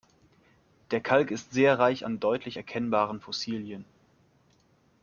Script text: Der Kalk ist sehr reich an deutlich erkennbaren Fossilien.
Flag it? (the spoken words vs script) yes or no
no